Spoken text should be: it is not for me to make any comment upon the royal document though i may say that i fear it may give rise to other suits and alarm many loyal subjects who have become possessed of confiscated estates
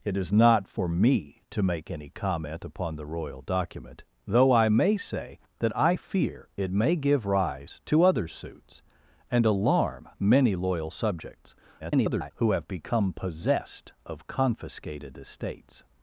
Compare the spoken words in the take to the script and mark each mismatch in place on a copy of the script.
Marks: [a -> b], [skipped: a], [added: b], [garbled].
it is not for me to make any comment upon the royal document though i may say that i fear it may give rise to other suits and alarm many loyal subjects [garbled] who have become possessed of confiscated estates